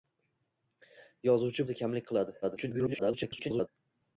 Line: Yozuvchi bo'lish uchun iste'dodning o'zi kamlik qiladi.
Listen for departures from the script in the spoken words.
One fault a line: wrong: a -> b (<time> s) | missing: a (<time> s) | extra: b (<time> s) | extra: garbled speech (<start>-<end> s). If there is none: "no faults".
missing: bo'lish uchun iste'dodning (1.6 s)
extra: garbled speech (2.4-3.7 s)